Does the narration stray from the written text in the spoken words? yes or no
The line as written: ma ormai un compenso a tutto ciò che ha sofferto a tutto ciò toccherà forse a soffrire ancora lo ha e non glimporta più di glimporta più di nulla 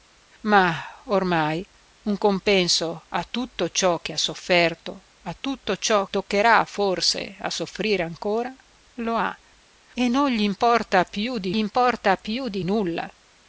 no